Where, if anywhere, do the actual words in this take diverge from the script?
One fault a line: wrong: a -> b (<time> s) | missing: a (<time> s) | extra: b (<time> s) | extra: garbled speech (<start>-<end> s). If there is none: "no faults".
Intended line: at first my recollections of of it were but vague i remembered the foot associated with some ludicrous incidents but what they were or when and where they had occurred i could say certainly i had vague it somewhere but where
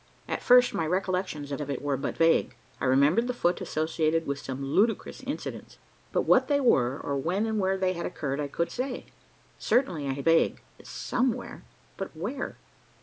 no faults